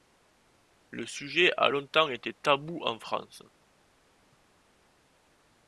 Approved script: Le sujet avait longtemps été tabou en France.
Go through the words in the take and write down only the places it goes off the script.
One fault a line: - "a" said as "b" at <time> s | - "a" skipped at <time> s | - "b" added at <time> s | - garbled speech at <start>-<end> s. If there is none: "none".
- "avait" said as "a" at 1.6 s